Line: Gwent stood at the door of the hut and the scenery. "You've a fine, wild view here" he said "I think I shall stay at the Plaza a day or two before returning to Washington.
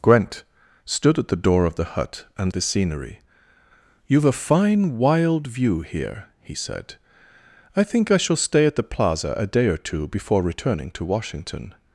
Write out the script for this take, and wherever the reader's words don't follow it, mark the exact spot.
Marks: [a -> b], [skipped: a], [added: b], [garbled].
Gwent stood at the door of the hut and the scenery. "You've a fine, wild view here" he said "I think I shall stay at the Plaza a day or two before returning to Washington.